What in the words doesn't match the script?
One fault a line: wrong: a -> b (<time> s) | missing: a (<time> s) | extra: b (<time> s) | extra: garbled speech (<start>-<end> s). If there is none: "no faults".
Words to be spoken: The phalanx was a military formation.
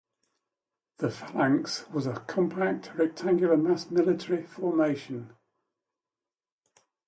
extra: compact rectangular mass (2.2 s)